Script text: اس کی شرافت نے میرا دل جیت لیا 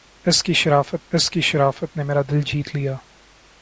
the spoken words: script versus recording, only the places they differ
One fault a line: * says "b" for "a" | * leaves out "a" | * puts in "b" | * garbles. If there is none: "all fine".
* puts in "اس کی شرافت"